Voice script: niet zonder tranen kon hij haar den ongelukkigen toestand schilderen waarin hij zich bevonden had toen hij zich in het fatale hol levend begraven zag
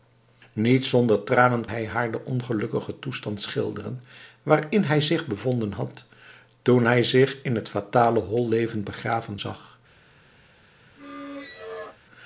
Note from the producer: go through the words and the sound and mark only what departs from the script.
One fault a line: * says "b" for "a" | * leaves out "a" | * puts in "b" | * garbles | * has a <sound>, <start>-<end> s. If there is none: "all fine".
* leaves out "kon"
* has a squeak, 11.0-12.0 s